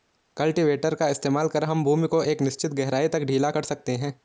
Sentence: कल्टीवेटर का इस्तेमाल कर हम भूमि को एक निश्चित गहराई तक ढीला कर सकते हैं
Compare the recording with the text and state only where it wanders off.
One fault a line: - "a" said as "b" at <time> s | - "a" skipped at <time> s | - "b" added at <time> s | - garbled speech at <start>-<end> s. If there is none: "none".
none